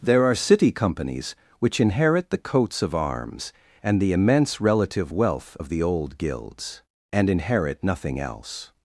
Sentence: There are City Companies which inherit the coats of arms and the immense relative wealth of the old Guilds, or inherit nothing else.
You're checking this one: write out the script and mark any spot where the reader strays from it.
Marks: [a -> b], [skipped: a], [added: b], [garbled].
There are City Companies which inherit the coats of arms and the immense relative wealth of the old Guilds, [or -> and] inherit nothing else.